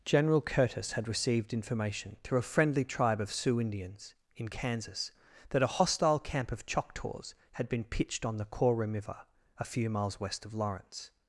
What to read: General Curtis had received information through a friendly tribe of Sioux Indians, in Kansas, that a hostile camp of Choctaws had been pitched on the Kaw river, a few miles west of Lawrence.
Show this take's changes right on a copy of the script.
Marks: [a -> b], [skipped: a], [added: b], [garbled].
General Curtis had received information through a friendly tribe of Sioux Indians, in Kansas, that a hostile camp of Choctaws had been pitched on the Kaw river, a few miles west of Lawrence.